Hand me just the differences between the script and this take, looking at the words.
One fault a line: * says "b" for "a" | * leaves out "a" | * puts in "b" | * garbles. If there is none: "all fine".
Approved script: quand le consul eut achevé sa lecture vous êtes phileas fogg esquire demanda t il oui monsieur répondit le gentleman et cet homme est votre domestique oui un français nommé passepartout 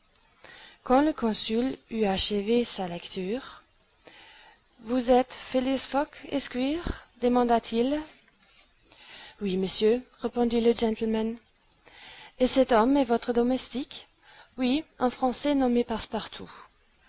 all fine